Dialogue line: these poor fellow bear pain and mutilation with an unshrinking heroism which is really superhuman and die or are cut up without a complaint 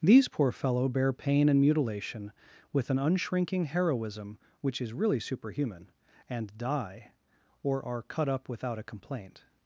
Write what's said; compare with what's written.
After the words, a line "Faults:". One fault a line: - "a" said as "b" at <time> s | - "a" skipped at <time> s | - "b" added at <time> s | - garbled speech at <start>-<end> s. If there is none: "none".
these poor fellow bear pain and mutilation with an unshrinking heroism which is really superhuman and die or are cut up without a complaint
Faults:
none